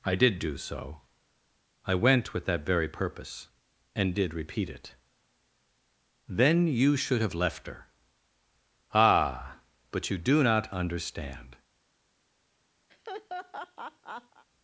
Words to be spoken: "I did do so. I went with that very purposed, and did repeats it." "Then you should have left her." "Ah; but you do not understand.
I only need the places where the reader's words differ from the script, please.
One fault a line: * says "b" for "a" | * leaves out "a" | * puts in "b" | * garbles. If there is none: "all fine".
* says "purpose" for "purposed"
* says "repeat" for "repeats"